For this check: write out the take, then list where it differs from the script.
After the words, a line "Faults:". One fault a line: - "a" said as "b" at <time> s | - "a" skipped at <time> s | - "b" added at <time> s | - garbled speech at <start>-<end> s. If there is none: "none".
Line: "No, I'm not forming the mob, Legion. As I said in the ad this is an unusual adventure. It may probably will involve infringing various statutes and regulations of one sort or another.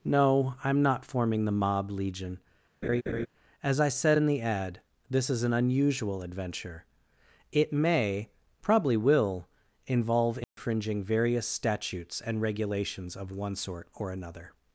"No, I'm not forming the mob, Legion. As I said in the ad this is an unusual adventure. It may probably will involve infringing various statutes and regulations of one sort or another.
Faults:
none